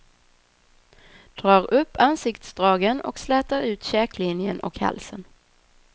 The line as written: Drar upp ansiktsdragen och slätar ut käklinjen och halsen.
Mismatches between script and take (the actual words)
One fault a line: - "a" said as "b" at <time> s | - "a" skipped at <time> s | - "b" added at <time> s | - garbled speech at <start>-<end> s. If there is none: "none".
none